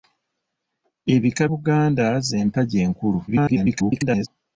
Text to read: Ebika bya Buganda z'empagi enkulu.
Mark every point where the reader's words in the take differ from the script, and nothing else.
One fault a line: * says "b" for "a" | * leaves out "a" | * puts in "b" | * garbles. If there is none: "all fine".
* leaves out "bya"
* garbles